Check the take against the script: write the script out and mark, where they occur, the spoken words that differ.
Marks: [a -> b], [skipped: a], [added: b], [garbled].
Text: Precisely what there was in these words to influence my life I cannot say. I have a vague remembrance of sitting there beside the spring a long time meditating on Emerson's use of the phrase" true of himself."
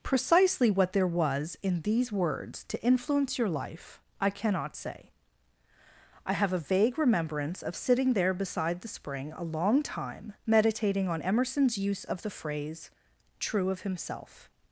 Precisely what there was in these words to influence [my -> your] life I cannot say. I have a vague remembrance of sitting there beside the spring a long time meditating on Emerson's use of the phrase" true of himself."